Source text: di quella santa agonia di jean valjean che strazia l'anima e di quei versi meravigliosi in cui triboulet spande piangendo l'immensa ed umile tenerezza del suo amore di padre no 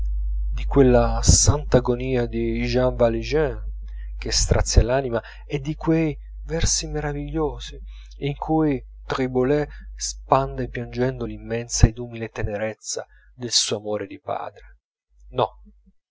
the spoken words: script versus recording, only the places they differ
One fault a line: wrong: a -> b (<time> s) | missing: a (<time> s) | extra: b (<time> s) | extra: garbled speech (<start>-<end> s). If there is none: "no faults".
no faults